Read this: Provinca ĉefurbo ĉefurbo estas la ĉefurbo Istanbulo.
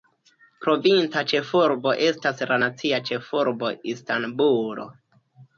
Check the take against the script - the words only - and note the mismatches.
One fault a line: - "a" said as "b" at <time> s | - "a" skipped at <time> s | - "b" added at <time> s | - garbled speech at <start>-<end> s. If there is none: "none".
- "ĉefurbo" skipped at 1.9 s
- "nacia" added at 2.6 s